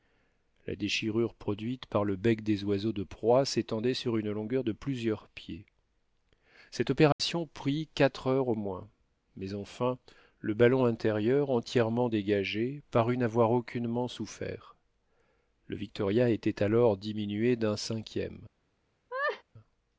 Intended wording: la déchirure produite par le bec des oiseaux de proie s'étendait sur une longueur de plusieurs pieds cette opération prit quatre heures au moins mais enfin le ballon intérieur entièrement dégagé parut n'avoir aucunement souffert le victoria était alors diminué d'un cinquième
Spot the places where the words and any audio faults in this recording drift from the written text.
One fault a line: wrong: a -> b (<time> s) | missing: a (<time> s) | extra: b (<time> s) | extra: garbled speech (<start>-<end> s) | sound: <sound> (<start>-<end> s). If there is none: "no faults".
sound: dropout (7.1-7.2 s)
sound: laugh (19.1-19.4 s)